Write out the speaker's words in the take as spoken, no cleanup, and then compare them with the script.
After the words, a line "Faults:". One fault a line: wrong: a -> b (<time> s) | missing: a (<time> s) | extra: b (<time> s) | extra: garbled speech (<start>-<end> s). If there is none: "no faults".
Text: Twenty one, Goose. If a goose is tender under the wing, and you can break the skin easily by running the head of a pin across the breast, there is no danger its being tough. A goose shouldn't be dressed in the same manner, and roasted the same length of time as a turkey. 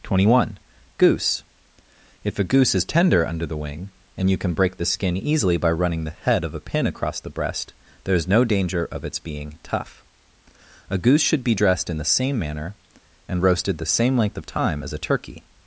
Twenty one, Goose. If a goose is tender under the wing, and you can break the skin easily by running the head of a pin across the breast, there is no danger of its being tough. A goose should be dressed in the same manner, and roasted the same length of time as a turkey.
Faults:
extra: of (8.9 s)
wrong: shouldn't -> should (11.2 s)